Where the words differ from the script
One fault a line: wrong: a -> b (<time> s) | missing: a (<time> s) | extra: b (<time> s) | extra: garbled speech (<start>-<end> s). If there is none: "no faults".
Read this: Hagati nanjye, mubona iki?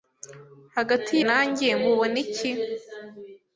no faults